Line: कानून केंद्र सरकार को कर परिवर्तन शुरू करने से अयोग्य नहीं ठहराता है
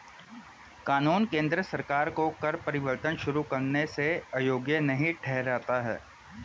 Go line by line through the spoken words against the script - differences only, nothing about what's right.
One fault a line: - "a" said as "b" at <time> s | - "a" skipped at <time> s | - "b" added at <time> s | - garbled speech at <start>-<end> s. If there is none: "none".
none